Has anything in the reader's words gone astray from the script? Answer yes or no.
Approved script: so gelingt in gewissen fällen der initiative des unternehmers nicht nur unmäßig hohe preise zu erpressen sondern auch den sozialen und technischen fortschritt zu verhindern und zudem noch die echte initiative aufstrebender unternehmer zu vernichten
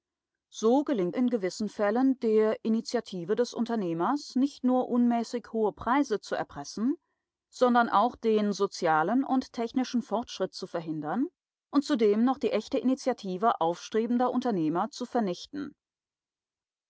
no